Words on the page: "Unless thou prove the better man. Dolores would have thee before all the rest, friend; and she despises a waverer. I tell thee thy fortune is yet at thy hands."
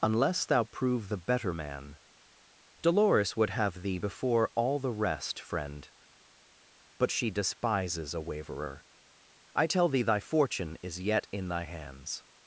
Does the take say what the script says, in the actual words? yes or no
no